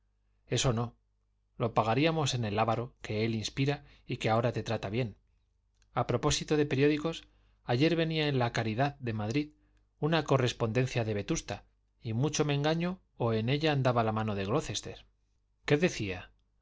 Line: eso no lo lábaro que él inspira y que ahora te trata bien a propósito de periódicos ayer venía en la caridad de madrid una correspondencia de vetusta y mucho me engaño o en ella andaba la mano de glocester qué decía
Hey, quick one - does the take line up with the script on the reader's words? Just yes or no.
no